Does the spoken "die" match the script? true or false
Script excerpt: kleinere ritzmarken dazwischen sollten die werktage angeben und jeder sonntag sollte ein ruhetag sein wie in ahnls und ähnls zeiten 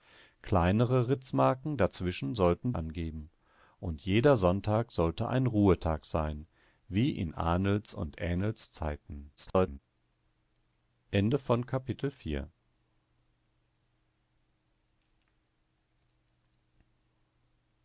false